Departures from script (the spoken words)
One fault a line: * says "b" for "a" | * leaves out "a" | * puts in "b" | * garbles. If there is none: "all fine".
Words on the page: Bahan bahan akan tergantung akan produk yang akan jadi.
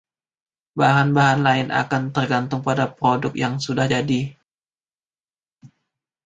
* puts in "lain"
* says "pada" for "akan"
* says "sudah" for "akan"